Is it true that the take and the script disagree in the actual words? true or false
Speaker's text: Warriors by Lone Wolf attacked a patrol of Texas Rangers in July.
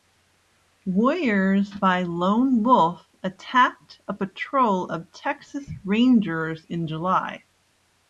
false